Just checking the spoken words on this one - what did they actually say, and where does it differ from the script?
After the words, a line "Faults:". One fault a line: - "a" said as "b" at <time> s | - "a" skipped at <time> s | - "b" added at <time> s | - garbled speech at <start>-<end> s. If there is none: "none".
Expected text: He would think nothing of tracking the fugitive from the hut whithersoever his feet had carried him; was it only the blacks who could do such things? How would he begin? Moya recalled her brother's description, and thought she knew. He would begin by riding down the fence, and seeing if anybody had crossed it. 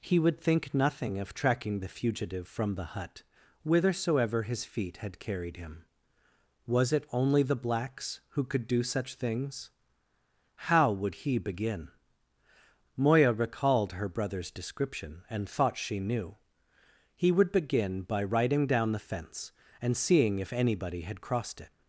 He would think nothing of tracking the fugitive from the hut whithersoever his feet had carried him; was it only the blacks who could do such things? How would he begin? Moya recalled her brother's description, and thought she knew. He would begin by riding down the fence, and seeing if anybody had crossed it.
Faults:
none